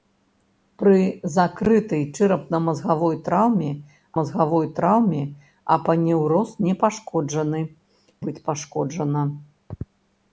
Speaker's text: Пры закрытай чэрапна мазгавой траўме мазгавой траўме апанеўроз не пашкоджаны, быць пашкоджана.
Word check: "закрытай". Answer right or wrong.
right